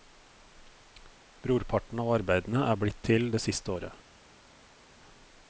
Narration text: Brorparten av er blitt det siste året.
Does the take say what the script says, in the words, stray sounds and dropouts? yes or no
no